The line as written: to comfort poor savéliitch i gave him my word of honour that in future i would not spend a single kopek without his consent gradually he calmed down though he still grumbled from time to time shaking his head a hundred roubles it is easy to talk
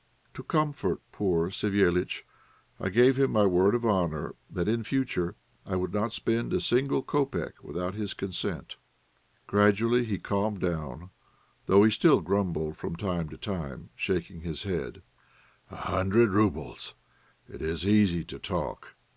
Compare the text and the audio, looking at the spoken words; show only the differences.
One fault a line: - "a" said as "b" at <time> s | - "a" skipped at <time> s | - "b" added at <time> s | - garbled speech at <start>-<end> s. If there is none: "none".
none